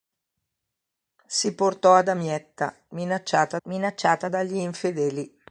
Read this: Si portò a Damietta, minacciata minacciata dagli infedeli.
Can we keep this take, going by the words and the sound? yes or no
yes